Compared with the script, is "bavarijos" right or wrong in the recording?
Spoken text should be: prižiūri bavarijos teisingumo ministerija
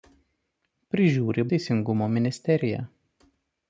wrong